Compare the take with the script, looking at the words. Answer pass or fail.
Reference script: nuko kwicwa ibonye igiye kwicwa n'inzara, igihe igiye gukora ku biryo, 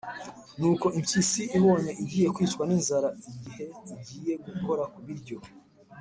fail